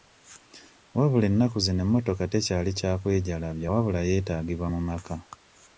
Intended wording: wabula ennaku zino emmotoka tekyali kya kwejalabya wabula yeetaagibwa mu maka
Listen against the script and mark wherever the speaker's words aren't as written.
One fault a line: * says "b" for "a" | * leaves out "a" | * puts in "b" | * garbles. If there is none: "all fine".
all fine